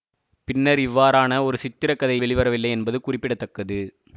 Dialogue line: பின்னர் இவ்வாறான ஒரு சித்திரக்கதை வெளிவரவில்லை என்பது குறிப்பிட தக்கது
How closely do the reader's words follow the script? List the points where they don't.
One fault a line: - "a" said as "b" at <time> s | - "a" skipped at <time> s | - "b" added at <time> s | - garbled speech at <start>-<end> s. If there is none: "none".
none